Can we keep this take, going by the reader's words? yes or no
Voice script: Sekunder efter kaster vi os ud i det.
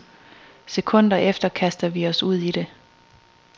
yes